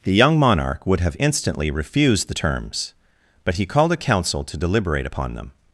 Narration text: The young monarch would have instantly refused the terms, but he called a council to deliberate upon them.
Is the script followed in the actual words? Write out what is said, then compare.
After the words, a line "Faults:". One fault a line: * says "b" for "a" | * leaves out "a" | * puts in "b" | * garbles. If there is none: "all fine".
The young monarch would have instantly refused the terms, but he called a council to deliberate upon them.
Faults:
all fine